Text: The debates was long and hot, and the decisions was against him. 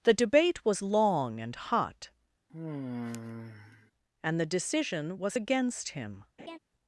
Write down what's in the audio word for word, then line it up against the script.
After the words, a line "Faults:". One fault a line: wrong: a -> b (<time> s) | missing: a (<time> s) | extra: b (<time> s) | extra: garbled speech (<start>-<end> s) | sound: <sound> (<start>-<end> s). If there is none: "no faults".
The debate was long and hot, and the decision was against him.
Faults:
wrong: debates -> debate (0.1 s)
sound: sigh (2.5-3.9 s)
wrong: decisions -> decision (4.5 s)
sound: laugh (6.4-6.6 s)